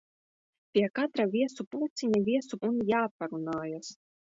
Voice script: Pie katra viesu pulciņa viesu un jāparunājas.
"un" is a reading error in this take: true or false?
false